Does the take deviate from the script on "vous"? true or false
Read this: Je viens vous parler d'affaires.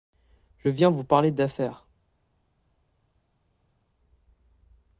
false